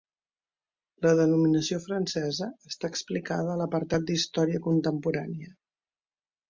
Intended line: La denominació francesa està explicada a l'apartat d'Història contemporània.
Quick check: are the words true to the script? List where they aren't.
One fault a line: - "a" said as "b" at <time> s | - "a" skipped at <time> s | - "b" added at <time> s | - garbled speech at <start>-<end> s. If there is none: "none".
none